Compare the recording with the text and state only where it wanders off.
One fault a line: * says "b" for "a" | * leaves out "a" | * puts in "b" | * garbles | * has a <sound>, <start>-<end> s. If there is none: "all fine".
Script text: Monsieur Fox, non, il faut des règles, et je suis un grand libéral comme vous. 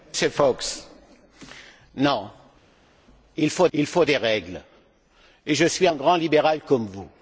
* puts in "il faut"